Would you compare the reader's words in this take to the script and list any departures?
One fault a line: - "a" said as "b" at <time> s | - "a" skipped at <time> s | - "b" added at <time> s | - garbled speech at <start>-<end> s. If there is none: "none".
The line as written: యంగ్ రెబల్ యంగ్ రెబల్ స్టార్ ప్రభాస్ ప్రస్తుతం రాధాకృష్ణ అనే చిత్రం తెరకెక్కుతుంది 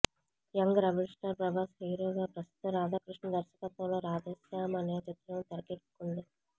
- "యంగ్ రెబల్" skipped at 1.1 s
- "హీరోగా" added at 1.8 s
- "దర్శకత్వంలో రాధేశ్యామ్" added at 3.4 s